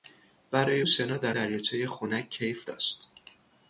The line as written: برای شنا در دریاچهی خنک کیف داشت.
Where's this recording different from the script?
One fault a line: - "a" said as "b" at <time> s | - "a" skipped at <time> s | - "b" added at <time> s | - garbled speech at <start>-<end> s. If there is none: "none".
none